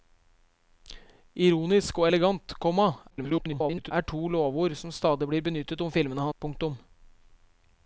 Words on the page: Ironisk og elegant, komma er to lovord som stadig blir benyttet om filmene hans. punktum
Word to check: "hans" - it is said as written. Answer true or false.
false